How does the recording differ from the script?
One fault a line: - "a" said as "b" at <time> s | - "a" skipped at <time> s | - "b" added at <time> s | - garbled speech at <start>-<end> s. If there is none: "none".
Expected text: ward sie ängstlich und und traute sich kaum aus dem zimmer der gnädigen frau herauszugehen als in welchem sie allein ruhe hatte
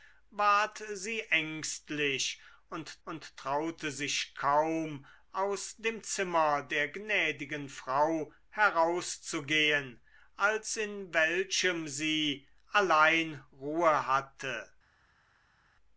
none